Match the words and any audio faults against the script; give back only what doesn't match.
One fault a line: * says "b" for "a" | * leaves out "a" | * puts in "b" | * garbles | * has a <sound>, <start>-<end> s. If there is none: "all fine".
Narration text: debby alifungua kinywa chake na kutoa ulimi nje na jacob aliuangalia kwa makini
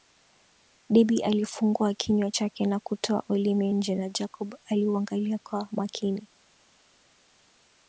all fine